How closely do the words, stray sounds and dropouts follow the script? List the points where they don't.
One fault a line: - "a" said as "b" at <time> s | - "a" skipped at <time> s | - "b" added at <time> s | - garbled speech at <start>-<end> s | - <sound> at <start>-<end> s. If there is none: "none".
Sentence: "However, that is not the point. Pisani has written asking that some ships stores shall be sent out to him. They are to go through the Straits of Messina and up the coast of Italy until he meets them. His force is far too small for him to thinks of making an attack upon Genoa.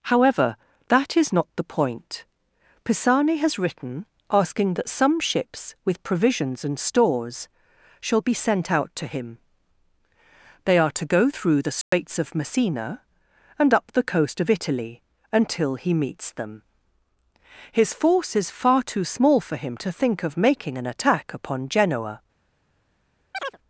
- "with provisions and" added at 5.8 s
- dropout at 11.8-11.9 s
- "thinks" said as "think" at 19.9 s
- chirp at 23.3-23.6 s